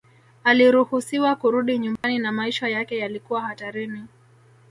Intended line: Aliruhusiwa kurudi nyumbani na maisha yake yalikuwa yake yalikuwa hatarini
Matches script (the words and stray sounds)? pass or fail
fail